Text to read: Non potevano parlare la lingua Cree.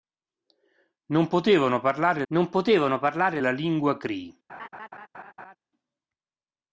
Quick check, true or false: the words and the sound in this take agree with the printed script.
false